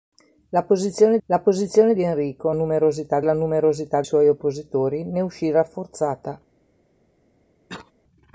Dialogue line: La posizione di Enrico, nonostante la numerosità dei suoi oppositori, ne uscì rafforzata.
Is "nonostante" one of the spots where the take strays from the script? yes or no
yes